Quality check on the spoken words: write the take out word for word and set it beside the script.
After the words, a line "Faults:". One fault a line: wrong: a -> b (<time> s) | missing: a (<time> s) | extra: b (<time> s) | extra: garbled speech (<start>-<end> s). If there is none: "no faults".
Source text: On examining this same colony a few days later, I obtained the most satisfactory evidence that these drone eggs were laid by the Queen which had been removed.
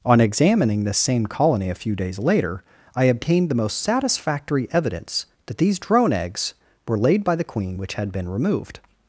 On examining this same colony a few days later, I obtained the most satisfactory evidence that these drone eggs were laid by the Queen which had been removed.
Faults:
no faults